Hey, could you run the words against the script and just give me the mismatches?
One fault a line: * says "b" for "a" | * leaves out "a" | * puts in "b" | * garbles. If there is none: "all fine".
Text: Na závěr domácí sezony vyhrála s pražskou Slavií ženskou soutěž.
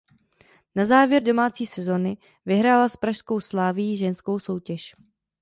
all fine